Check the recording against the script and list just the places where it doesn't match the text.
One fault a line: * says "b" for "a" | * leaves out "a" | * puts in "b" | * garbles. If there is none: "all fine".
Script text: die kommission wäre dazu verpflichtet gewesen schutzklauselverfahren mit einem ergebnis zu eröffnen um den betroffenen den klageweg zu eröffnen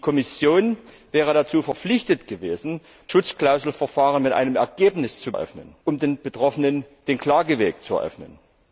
all fine